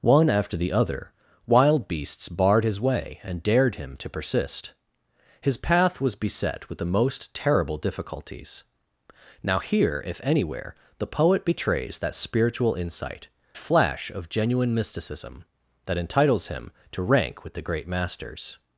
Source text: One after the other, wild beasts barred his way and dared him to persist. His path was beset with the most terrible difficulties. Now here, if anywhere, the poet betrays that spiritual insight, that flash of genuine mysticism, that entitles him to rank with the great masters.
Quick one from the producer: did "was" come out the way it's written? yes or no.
yes